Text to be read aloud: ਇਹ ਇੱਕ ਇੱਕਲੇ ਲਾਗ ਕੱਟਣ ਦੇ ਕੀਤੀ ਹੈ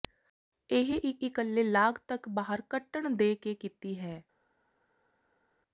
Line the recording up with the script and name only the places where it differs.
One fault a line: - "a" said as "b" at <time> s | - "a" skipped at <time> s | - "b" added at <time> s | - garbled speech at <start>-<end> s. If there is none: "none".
- "ਤੱਕ ਬਾਹਰ" added at 2.1 s
- "ਕੇ" added at 3.4 s